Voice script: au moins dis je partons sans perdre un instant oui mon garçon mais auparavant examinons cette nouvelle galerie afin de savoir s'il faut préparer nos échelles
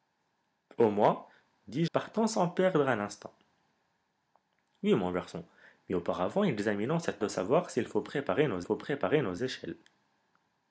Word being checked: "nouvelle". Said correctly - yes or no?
no